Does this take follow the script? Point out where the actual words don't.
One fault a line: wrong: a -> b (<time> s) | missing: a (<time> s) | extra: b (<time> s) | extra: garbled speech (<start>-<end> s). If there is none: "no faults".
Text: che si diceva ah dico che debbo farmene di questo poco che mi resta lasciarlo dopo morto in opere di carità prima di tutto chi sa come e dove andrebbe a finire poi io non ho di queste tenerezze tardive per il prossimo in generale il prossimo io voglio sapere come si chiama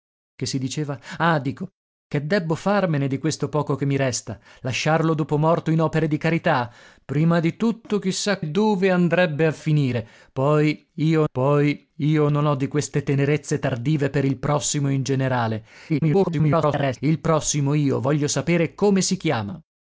missing: come (8.4 s)
extra: poi io (11.3 s)
extra: garbled speech (15.9-17.0 s)